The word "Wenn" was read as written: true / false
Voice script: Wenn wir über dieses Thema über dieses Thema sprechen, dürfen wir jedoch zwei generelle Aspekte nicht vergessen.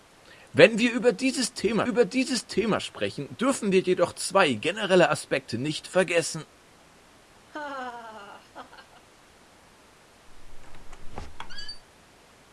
true